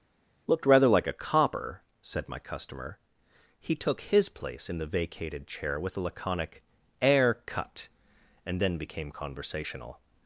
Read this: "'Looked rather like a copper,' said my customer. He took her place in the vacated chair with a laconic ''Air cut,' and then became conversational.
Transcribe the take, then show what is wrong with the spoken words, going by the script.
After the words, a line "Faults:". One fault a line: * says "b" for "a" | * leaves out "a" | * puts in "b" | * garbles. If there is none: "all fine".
"'Looked rather like a copper,' said my customer. He took his place in the vacated chair with a laconic ''Air cut,' and then became conversational.
Faults:
* says "his" for "her"